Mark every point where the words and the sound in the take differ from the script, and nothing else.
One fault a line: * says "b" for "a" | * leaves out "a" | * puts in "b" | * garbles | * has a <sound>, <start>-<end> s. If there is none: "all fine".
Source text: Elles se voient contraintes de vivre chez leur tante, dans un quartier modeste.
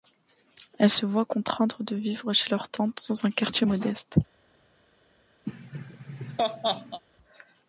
* has a laugh, 5.5-7.0 s